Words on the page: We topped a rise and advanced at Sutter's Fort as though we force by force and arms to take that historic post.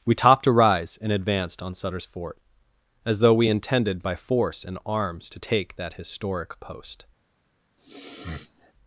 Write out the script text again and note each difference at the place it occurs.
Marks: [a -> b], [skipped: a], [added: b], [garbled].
We topped a rise and advanced [at -> on] Sutter's Fort as though we [force -> intended] by force and arms to take that historic post.